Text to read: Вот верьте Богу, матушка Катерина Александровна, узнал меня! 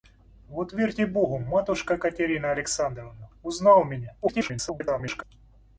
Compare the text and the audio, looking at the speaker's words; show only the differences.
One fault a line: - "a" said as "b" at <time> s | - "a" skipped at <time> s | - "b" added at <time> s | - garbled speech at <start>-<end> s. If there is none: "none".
- garbled speech at 4.2-5.2 s